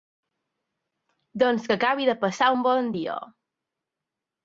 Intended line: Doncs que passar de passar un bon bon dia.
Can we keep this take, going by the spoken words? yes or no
no